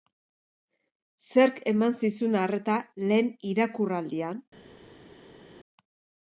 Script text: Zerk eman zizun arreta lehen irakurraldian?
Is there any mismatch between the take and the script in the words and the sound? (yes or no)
no